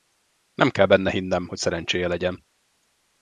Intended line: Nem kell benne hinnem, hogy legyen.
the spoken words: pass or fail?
fail